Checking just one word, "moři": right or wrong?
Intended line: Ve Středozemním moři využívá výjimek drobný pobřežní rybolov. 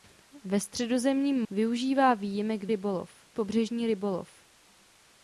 wrong